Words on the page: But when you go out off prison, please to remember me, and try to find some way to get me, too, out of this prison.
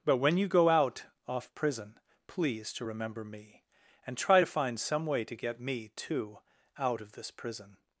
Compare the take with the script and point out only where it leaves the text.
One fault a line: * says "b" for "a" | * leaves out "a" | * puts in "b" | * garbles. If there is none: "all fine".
all fine